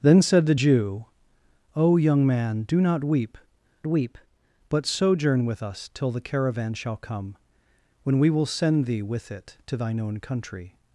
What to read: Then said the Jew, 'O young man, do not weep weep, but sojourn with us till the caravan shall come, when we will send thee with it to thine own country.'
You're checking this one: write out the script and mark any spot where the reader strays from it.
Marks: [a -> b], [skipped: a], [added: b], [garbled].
Then said the Jew, 'O young man, do not weep weep, but sojourn with us till the caravan shall come, when we will send thee with it to thine own country.'